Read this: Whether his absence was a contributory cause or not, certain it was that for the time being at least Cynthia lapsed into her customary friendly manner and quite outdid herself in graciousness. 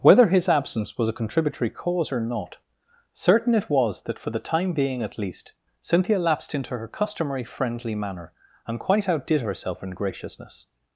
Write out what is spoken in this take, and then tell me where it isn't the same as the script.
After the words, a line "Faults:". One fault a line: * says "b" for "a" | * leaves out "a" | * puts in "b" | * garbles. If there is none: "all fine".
Whether his absence was a contributory cause or not, certain it was that for the time being at least Cynthia lapsed into her customary friendly manner and quite outdid herself in graciousness.
Faults:
all fine